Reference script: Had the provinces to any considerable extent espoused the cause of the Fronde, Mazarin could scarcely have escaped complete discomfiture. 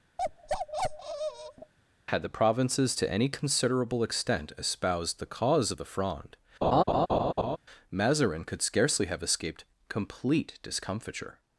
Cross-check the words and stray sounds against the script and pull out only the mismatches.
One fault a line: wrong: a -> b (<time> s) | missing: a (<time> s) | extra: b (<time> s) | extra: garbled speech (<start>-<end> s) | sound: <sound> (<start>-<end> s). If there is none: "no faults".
sound: bark (0.2-1.7 s)
sound: laugh (6.6-7.6 s)